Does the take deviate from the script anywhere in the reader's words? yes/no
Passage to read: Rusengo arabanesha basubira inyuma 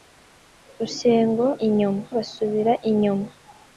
yes